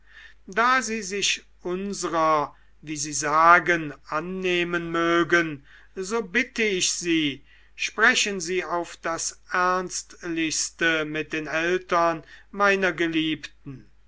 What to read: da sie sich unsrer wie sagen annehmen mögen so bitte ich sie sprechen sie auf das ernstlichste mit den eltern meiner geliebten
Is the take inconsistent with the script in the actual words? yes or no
yes